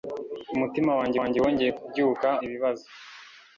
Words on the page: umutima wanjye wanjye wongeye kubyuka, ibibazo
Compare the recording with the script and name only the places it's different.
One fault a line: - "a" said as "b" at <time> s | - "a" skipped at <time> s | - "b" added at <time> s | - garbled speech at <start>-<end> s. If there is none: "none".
none